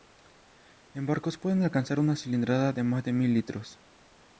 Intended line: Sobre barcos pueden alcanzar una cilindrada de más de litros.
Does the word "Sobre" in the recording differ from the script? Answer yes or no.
yes